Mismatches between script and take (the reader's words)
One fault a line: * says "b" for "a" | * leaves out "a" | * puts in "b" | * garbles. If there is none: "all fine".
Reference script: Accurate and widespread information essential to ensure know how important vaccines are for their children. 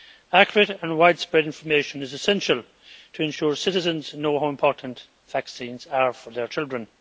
* puts in "is"
* puts in "citizens"